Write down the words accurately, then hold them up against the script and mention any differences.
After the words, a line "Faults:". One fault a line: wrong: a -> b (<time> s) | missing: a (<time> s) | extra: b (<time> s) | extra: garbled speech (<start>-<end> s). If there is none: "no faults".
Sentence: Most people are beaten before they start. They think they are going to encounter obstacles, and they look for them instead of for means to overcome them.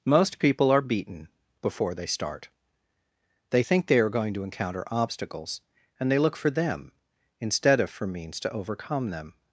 Most people are beaten before they start. They think they are going to encounter obstacles, and they look for them instead of for means to overcome them.
Faults:
no faults